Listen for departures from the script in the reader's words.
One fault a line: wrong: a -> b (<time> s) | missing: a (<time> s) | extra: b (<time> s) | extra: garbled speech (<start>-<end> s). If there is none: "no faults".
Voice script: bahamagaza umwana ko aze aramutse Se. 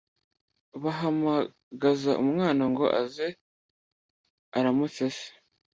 wrong: ko -> ngo (2.7 s)